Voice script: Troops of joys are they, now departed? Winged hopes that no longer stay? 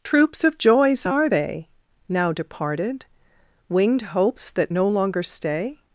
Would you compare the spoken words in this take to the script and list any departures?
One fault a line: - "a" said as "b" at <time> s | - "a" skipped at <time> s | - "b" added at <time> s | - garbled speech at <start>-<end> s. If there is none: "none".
none